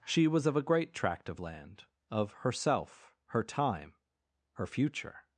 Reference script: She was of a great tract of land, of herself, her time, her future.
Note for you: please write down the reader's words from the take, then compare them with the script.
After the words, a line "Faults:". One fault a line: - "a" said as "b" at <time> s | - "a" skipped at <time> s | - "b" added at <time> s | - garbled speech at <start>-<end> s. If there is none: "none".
She was of a great tract of land, of herself, her time, her future.
Faults:
none